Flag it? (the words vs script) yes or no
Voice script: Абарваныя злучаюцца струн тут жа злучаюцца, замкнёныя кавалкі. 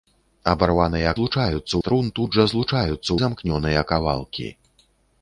no